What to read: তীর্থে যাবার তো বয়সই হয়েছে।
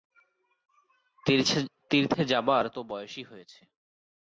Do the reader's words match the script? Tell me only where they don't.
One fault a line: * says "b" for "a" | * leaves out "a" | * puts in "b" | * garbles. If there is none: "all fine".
all fine